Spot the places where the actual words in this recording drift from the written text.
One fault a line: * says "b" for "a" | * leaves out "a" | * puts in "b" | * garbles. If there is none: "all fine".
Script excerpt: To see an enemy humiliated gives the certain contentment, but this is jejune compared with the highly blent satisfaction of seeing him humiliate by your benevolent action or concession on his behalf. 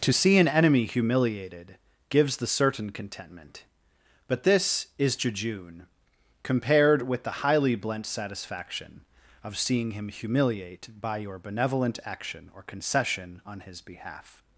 all fine